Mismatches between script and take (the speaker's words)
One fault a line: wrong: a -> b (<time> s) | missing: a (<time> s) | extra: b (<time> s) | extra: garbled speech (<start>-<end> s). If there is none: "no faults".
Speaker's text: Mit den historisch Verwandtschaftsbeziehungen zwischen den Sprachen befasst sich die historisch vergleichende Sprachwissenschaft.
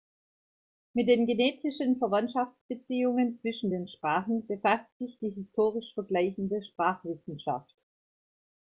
wrong: historisch -> genetischen (1.3 s)